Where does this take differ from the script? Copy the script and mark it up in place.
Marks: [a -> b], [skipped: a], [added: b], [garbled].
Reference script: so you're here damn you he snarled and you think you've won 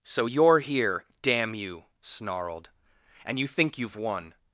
so you're here damn you [skipped: he] snarled and you think you've won